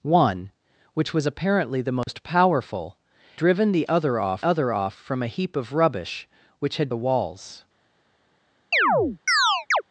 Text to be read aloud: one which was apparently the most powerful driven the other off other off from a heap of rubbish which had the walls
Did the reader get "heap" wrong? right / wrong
right